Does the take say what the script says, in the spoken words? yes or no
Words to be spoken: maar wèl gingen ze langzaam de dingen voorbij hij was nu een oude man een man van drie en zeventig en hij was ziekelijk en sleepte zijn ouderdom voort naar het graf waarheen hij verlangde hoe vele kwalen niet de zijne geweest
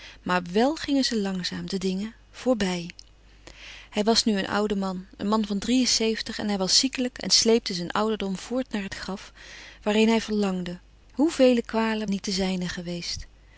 yes